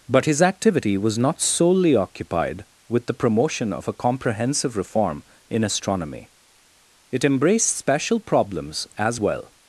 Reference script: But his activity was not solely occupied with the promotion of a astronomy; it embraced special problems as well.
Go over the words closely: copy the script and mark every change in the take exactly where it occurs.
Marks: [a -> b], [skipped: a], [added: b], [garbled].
But his activity was not solely occupied with the promotion of a [added: comprehensive reform in] astronomy; it embraced special problems as well.